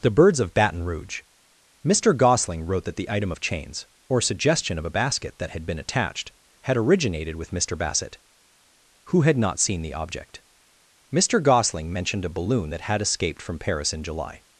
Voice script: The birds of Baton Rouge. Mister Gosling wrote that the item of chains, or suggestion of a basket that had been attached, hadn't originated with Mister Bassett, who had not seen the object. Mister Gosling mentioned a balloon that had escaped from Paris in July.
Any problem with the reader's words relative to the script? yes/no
yes